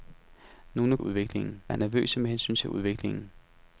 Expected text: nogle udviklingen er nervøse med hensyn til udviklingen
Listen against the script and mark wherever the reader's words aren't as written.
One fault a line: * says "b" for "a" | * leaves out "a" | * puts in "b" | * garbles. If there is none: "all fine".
all fine